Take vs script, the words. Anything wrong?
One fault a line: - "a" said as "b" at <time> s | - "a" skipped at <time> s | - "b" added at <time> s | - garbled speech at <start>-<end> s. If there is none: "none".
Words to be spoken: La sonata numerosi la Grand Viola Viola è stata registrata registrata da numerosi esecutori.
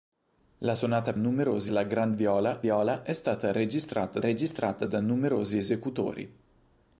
none